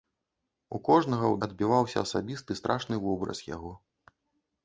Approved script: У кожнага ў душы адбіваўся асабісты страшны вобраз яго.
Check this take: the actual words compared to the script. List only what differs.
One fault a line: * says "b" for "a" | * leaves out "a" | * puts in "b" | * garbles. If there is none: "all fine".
* leaves out "душы"